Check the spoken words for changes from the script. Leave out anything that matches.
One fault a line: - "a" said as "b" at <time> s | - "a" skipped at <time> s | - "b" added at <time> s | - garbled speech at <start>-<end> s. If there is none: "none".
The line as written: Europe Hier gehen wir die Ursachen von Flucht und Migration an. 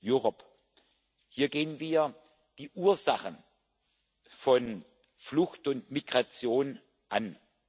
none